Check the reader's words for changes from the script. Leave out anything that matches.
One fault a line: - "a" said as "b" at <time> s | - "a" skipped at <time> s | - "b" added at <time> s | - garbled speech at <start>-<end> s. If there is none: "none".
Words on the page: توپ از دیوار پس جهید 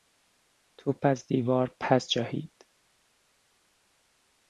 none